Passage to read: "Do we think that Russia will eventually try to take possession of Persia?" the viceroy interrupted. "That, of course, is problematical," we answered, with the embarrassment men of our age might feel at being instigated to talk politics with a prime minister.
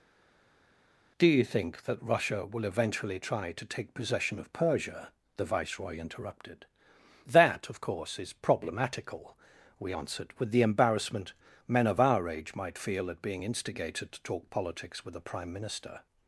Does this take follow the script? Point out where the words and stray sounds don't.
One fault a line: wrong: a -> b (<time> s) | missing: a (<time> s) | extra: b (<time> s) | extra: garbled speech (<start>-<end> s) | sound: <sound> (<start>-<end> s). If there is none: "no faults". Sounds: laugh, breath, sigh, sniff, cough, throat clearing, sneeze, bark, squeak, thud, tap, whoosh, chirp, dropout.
wrong: we -> you (1.3 s)